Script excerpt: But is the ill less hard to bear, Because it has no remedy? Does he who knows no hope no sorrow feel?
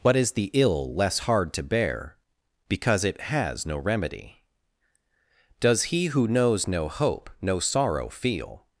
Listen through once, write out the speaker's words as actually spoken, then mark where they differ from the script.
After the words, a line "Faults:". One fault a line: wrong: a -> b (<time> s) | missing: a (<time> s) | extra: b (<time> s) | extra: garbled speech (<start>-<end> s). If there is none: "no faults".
What is the ill less hard to bear, Because it has no remedy? Does he who knows no hope no sorrow feel?
Faults:
wrong: But -> What (0.0 s)